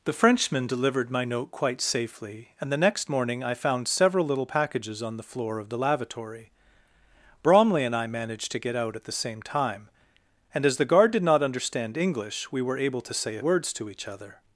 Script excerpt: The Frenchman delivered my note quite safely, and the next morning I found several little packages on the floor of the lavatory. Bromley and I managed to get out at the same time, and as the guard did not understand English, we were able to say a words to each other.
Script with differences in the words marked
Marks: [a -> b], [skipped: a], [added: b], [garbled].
The Frenchman delivered my note quite safely, and the next morning I found several little packages on the floor of the lavatory. Bromley and I managed to get out at the same time, and as the guard did not understand English, we were able to say a words to each other.